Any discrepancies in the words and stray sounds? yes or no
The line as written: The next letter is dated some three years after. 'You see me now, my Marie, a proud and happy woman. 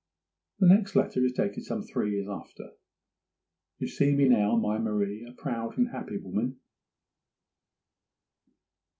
no